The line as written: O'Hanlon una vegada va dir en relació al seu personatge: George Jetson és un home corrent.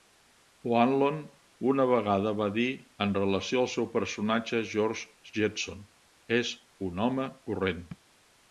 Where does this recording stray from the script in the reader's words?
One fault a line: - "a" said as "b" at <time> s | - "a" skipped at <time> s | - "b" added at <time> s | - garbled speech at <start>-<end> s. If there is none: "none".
none